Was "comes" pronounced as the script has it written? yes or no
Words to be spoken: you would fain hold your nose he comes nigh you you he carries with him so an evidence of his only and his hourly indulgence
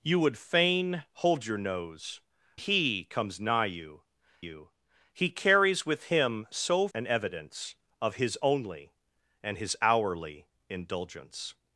yes